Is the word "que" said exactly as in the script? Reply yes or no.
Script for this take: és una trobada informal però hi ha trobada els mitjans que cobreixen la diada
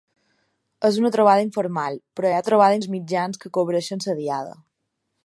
yes